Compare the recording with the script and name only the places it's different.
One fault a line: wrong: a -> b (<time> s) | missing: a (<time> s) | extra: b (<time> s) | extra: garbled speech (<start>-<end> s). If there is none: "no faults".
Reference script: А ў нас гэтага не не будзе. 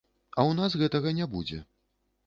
missing: не (1.3 s)